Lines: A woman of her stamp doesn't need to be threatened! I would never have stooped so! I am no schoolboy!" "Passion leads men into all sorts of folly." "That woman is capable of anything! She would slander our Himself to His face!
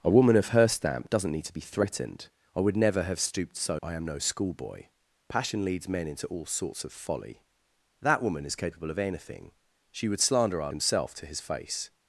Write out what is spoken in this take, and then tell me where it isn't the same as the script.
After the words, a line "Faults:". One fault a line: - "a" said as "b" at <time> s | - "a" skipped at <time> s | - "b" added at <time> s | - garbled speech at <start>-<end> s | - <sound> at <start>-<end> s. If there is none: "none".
A woman of her stamp doesn't need to be threatened! I would never have stooped so! I am no schoolboy!" "Passion leads men into all sorts of folly." "That woman is capable of anything! She would slander our Himself to His face!
Faults:
none